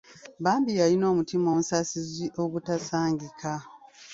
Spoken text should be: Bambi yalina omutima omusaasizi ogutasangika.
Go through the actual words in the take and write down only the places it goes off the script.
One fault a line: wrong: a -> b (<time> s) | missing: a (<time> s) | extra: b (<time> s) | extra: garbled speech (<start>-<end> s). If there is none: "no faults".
no faults